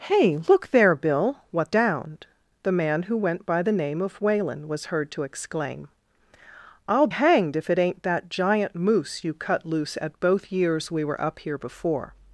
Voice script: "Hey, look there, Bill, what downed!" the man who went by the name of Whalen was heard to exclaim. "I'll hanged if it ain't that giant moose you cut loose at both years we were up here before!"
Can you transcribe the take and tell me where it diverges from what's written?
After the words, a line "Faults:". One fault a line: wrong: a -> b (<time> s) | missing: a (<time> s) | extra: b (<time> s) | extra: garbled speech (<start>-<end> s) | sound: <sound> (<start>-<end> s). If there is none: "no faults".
"Hey, look there, Bill, what downed!" the man who went by the name of Whalen was heard to exclaim. "I'll hanged if it ain't that giant moose you cut loose at both years we were up here before!"
Faults:
no faults